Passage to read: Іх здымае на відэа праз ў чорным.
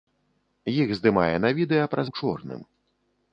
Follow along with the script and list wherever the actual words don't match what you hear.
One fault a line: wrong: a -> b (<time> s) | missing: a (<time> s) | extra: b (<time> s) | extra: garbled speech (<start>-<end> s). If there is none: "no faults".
no faults